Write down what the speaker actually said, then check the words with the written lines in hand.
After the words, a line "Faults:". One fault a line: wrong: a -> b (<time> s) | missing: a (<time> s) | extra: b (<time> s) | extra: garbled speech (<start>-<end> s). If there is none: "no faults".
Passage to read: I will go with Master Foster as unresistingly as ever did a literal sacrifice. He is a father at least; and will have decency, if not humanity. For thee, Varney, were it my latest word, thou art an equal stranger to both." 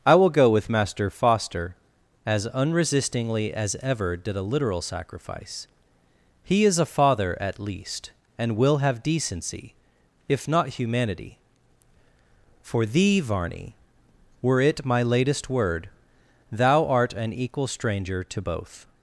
I will go with Master Foster as unresistingly as ever did a literal sacrifice. He is a father at least; and will have decency, if not humanity. For thee, Varney, were it my latest word, thou art an equal stranger to both."
Faults:
no faults